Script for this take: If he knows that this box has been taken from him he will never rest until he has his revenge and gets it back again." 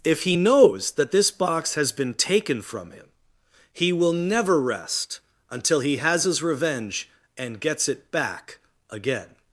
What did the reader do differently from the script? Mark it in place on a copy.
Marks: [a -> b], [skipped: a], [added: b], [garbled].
If he knows that this box has been taken from him he will never rest until he has his revenge and gets it back again."